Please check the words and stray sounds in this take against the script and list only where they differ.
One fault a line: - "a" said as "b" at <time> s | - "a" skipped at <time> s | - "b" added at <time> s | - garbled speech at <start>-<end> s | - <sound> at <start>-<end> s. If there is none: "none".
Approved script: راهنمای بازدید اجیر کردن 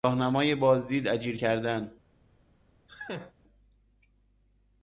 - laugh at 2.9-3.3 s